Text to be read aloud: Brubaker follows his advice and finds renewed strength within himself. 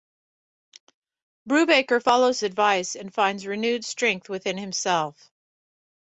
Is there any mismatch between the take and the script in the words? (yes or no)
yes